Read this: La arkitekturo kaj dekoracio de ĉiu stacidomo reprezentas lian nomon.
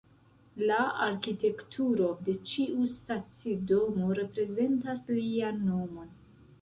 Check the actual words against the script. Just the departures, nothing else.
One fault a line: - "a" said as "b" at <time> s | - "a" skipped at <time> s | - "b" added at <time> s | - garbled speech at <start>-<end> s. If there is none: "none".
- "kaj dekoracio" skipped at 2.1 s